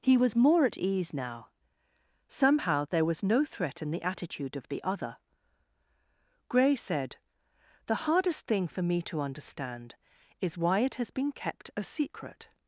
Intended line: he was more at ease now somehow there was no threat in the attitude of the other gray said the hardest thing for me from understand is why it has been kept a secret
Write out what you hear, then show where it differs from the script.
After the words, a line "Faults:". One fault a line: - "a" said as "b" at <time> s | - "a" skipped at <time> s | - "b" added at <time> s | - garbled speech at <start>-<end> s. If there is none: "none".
he was more at ease now somehow there was no threat in the attitude of the other gray said the hardest thing for me to understand is why it has been kept a secret
Faults:
- "from" said as "to" at 9.1 s